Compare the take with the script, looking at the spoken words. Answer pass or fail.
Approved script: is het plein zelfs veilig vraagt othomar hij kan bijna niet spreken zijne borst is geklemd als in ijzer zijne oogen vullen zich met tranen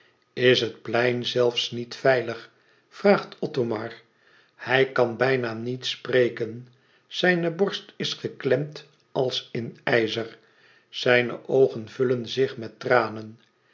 fail